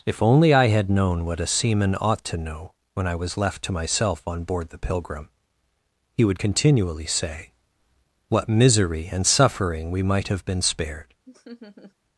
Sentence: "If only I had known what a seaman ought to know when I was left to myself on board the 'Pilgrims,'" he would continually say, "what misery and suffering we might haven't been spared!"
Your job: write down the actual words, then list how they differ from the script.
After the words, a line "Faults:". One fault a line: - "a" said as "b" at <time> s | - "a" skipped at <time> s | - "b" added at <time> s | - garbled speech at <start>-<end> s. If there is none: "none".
"If only I had known what a seaman ought to know when I was left to myself on board the 'Pilgrim,'" he would continually say, "what misery and suffering we might have been spared!"
Faults:
- "Pilgrims" said as "Pilgrim" at 4.8 s
- "haven't" said as "have" at 10.3 s